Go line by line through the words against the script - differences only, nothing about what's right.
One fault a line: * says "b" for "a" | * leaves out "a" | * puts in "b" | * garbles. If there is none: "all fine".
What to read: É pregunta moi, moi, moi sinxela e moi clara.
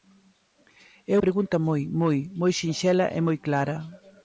all fine